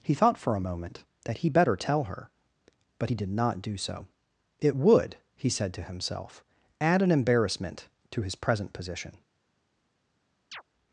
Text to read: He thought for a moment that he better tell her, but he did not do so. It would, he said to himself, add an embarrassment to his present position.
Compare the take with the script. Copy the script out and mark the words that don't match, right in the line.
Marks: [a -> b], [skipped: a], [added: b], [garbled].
He thought for a moment that he better tell her, but he did not do so. It would, he said to himself, add an embarrassment to his present position.